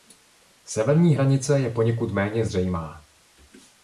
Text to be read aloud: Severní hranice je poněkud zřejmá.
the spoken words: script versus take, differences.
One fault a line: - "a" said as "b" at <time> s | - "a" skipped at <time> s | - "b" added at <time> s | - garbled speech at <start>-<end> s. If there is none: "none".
- "méně" added at 2.1 s